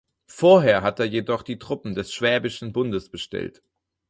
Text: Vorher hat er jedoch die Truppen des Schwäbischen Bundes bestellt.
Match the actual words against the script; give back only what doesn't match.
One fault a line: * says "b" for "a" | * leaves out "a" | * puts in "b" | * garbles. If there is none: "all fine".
all fine